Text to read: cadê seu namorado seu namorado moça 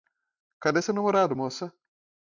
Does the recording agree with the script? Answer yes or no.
no